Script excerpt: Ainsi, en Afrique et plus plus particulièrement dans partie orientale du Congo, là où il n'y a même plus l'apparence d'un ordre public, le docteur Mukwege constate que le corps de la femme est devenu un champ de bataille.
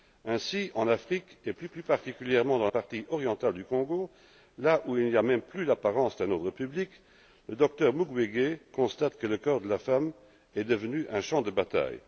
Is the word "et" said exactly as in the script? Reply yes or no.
yes